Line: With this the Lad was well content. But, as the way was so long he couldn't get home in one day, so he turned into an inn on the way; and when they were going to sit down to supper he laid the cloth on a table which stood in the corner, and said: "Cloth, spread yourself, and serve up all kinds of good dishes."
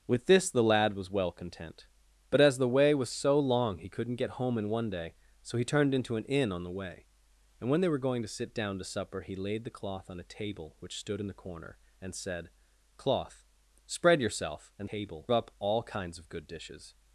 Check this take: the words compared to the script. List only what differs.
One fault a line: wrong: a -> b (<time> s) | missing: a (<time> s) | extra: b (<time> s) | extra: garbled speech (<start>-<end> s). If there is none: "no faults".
wrong: serve -> table (14.9 s)